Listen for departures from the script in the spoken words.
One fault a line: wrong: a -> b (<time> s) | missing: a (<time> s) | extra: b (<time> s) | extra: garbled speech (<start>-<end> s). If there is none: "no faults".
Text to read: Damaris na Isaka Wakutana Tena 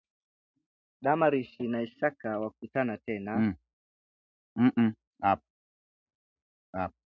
no faults